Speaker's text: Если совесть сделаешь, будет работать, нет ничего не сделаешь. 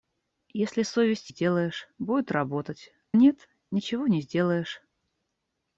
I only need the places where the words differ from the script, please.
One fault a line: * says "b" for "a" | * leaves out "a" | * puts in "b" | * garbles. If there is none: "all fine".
all fine